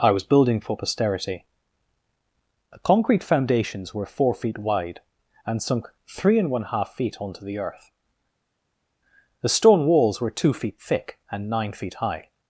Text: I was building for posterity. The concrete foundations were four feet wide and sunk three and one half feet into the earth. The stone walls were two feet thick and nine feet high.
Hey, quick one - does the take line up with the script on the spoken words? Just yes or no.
no